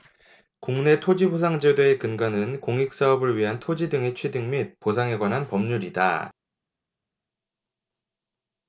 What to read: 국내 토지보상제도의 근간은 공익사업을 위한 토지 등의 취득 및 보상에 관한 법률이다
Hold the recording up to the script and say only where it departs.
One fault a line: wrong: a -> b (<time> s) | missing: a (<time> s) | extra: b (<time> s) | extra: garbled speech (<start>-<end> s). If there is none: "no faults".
no faults